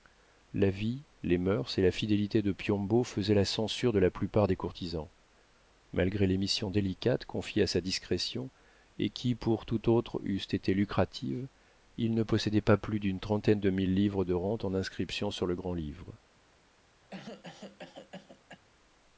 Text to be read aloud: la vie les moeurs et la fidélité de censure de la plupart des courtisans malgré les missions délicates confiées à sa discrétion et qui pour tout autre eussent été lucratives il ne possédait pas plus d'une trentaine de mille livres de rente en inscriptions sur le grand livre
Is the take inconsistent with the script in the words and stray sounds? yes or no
yes